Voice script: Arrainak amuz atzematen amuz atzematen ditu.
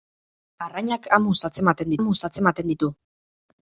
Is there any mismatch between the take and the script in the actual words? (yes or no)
no